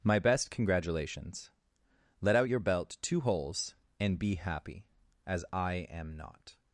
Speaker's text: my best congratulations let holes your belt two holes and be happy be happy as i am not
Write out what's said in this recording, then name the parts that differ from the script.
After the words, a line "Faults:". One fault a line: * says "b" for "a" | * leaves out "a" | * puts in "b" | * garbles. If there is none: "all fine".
my best congratulations let out your belt two holes and be happy as i am not
Faults:
* says "out" for "holes"
* leaves out "be happy"